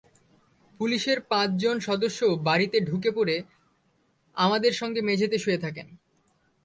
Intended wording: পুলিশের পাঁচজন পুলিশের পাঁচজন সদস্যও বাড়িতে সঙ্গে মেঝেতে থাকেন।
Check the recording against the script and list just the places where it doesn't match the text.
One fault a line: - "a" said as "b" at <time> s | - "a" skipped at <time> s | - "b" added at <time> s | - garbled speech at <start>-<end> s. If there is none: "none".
- "পুলিশের পাঁচজন সদস্যও বাড়িতে" said as "সদস্যও বাড়িতে ঢুকে পড়ে আমাদের" at 1.8 s
- "শুয়ে" added at 5.4 s